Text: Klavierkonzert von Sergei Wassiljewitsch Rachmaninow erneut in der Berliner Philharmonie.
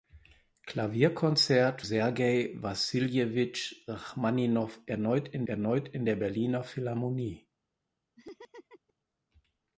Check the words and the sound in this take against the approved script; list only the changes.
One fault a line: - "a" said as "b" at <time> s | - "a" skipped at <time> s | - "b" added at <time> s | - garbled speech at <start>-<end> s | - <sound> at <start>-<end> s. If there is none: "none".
- "von" skipped at 1.8 s
- "erneut in" added at 5.4 s
- laugh at 8.2-8.9 s